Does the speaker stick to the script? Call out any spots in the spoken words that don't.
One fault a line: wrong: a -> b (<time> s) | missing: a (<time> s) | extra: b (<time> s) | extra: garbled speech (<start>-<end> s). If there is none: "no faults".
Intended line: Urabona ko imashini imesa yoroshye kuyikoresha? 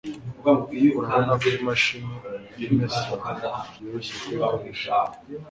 no faults